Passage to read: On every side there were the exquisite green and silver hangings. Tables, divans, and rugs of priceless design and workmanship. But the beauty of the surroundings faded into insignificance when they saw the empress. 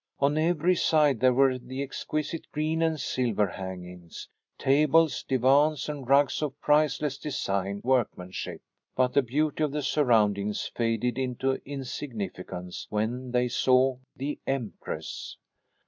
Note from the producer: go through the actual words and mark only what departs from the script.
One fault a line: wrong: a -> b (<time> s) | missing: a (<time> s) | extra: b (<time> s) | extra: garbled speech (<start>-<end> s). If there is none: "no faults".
missing: and (7.8 s)